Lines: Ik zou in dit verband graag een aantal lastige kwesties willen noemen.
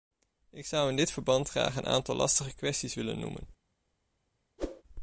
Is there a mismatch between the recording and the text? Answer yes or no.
no